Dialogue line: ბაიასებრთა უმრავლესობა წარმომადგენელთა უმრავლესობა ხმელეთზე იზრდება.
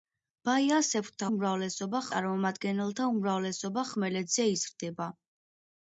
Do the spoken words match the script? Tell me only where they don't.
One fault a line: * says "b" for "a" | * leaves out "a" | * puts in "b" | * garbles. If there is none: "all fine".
all fine